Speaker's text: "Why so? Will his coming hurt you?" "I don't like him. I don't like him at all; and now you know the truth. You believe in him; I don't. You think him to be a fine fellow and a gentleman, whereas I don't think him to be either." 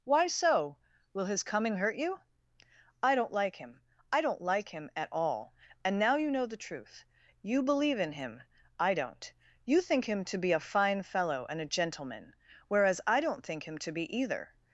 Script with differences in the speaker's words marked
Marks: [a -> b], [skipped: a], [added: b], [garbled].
"Why so? Will his coming hurt you?" "I don't like him. I don't like him at all; and now you know the truth. You believe in him; I don't. You think him to be a fine fellow and a gentleman, whereas I don't think him to be either."